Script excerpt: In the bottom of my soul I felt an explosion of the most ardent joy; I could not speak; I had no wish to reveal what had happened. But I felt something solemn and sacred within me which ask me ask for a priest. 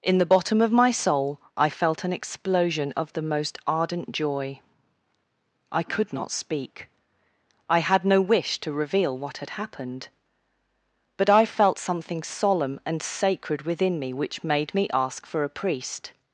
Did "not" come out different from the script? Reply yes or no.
no